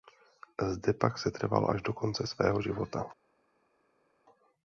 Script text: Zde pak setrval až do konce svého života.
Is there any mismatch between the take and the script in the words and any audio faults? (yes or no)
no